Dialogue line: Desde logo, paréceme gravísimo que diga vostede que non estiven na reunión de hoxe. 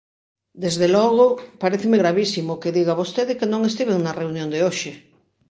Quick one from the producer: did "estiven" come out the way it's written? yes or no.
yes